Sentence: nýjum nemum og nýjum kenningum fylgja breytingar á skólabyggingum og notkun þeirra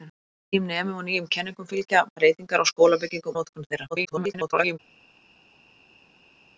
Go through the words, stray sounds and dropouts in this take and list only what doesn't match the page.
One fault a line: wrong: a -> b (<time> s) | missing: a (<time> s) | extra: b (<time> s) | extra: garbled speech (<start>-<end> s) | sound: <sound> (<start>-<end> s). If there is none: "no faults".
missing: og (3.4 s)
extra: garbled speech (3.9-4.8 s)